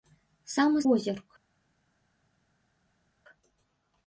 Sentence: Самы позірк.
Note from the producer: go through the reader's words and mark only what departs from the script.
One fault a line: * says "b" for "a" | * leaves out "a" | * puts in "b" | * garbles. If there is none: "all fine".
all fine